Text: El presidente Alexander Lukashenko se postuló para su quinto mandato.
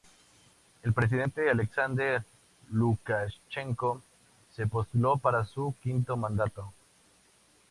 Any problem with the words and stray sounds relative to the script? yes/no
no